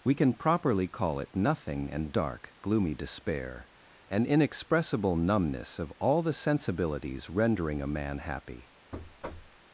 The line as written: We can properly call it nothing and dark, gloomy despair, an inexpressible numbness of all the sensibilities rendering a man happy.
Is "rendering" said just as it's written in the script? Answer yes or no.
yes